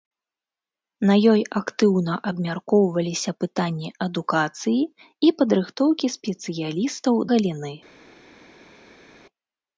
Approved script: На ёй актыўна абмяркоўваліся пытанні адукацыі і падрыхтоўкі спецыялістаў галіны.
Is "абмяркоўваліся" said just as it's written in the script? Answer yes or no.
yes